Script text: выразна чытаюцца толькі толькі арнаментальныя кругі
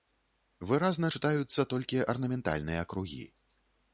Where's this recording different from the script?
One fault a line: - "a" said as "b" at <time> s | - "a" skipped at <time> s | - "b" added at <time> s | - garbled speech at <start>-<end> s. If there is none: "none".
- "толькі" skipped at 2.1 s